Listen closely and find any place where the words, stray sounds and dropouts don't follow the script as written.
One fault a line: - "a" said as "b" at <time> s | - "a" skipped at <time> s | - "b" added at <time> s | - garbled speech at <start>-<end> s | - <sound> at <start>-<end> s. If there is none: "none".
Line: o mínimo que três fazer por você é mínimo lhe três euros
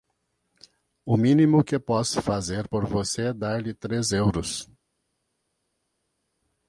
- "três" said as "posso" at 1.8 s
- "mínimo" said as "dar" at 3.3 s